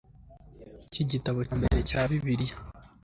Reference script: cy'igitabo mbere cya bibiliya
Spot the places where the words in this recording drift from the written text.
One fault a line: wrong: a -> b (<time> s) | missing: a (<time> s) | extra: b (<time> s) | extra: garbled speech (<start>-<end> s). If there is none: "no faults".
no faults